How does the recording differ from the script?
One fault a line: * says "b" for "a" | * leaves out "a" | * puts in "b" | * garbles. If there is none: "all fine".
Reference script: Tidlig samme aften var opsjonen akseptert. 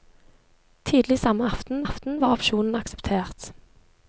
* puts in "aften"